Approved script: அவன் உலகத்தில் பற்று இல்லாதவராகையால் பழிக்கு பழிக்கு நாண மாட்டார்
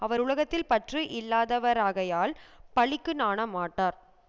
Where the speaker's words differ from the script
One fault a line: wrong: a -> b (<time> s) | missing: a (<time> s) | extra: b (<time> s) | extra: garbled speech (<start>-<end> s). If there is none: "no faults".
wrong: அவன் -> அவர் (0.0 s)
missing: பழிக்கு (3.1 s)